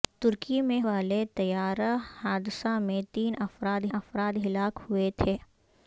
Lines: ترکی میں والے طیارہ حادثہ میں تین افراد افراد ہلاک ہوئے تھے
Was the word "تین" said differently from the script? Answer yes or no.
no